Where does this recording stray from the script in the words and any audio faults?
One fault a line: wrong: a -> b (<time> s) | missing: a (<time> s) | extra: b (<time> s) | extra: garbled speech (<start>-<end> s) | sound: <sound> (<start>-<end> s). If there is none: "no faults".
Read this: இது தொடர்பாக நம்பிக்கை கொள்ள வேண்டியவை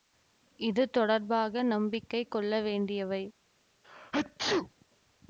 sound: sneeze (3.8-4.9 s)